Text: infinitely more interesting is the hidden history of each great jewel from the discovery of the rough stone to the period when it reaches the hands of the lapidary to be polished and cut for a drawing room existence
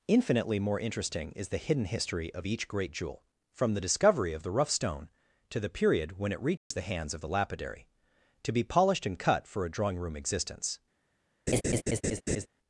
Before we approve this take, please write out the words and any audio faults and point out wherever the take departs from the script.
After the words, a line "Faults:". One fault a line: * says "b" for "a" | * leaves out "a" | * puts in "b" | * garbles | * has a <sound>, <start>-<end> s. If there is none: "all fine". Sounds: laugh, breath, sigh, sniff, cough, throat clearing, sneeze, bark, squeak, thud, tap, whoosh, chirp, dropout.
infinitely more interesting is the hidden history of each great jewel from the discovery of the rough stone to the period when it reaches the hands of the lapidary to be polished and cut for a drawing room existence
Faults:
* has a dropout, 6.6-6.7 s
* has a laugh, 11.5-12.5 s